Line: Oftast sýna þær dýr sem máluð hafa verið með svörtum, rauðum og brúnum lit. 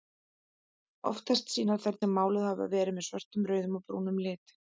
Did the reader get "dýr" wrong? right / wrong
wrong